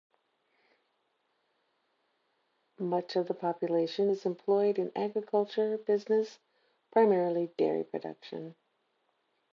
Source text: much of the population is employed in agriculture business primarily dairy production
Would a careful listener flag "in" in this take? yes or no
no